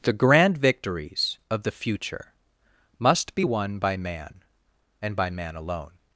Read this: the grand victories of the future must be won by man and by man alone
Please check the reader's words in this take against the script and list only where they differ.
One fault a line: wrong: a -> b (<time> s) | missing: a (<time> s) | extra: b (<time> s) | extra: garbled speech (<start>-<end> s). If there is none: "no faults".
no faults